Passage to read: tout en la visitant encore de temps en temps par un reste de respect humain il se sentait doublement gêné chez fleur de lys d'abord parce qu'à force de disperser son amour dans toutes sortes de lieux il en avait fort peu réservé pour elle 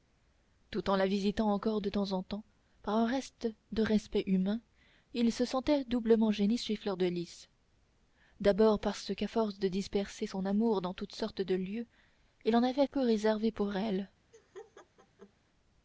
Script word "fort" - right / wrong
wrong